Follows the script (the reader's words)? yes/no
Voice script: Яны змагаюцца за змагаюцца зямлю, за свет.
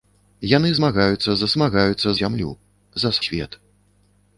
yes